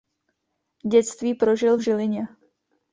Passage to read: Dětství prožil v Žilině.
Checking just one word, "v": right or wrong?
right